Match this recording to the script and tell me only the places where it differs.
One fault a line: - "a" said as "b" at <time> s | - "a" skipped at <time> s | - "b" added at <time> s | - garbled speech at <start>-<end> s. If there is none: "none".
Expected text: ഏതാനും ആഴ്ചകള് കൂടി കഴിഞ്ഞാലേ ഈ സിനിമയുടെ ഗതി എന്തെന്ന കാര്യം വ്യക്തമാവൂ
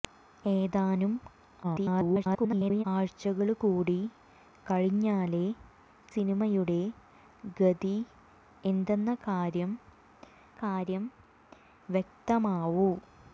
- garbled speech at 1.6-2.8 s
- "ഈ" skipped at 5.4 s
- "കാര്യം" added at 10.6 s